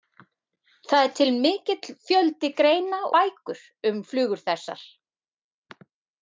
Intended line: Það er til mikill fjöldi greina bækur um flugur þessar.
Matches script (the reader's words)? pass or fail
pass